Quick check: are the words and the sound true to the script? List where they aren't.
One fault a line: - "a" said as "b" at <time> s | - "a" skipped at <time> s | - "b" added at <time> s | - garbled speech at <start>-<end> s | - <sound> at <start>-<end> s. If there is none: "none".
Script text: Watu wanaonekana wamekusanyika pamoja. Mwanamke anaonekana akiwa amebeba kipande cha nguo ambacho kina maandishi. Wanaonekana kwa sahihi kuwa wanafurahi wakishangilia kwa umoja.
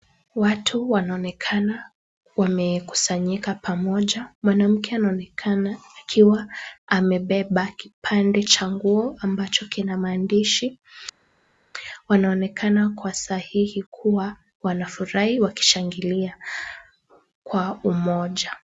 none